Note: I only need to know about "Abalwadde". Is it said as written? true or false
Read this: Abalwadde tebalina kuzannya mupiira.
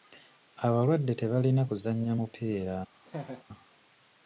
true